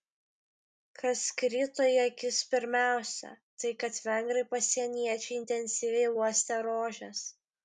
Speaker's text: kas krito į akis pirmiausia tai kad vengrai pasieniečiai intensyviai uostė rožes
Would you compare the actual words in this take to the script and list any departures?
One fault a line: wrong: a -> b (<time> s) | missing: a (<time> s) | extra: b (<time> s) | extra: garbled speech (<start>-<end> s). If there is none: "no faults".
no faults